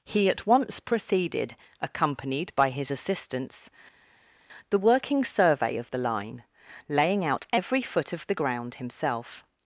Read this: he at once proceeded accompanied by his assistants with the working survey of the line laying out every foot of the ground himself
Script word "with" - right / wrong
wrong